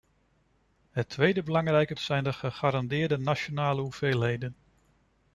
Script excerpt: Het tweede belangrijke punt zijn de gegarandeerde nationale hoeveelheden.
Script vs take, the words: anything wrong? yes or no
yes